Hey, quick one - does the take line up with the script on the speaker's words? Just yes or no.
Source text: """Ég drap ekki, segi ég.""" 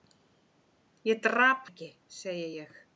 yes